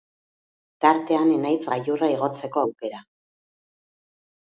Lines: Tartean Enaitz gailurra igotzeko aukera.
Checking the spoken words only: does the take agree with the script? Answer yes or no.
yes